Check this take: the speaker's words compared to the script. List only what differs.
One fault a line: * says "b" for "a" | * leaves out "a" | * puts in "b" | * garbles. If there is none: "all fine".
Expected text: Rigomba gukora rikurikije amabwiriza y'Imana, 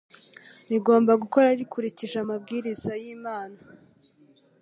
all fine